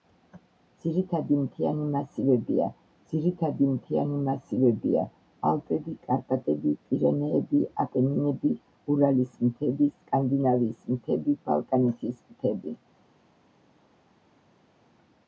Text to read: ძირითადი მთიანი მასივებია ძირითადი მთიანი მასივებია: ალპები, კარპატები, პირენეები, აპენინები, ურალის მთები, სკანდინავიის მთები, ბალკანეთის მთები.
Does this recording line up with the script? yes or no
yes